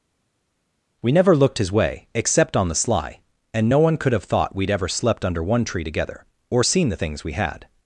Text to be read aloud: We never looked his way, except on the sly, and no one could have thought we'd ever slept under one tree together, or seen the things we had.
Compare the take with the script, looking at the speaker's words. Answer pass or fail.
pass